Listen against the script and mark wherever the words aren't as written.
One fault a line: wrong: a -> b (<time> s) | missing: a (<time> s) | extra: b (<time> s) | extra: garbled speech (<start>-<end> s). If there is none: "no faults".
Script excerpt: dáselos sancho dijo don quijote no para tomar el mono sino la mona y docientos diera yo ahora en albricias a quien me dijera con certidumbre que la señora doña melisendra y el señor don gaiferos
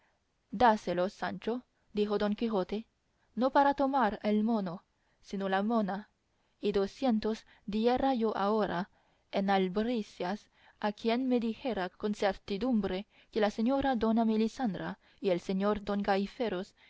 no faults